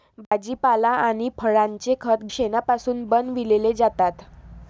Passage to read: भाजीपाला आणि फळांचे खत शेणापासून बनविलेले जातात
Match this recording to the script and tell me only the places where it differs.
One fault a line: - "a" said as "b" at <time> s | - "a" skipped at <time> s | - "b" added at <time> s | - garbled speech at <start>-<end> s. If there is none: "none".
none